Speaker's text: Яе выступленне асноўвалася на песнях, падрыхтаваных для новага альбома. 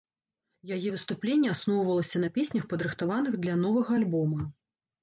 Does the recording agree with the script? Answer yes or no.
yes